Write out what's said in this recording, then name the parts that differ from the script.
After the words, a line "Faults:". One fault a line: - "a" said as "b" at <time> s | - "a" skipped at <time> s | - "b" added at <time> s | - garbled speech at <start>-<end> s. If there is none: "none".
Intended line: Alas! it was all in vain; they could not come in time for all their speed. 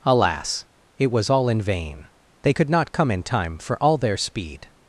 Alas! it was all in vain; they could not come in time for all their speed.
Faults:
none